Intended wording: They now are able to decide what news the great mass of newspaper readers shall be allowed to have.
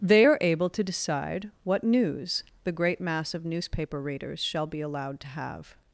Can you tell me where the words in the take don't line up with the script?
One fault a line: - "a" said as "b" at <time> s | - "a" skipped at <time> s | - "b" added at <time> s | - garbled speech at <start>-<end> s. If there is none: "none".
- "now" skipped at 0.2 s